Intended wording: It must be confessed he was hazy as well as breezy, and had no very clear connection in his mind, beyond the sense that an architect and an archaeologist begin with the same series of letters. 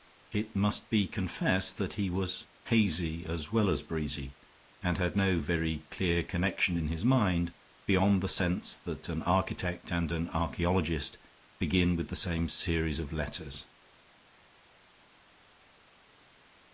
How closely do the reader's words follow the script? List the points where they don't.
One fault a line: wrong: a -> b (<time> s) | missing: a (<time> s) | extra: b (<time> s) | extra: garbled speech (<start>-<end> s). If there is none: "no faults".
extra: that (1.8 s)